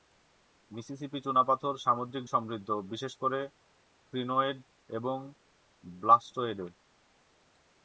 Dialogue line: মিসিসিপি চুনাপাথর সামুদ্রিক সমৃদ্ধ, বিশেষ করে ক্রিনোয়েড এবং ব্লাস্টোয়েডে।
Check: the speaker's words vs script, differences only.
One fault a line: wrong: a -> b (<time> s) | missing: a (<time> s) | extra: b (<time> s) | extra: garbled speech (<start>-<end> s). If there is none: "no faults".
no faults